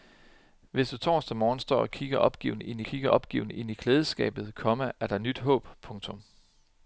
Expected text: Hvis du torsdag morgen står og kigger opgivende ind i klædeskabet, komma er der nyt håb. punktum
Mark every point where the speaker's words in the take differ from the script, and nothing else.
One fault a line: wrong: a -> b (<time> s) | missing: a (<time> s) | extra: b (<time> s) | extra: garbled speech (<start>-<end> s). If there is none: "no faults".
extra: kigger opgivende ind (2.8 s)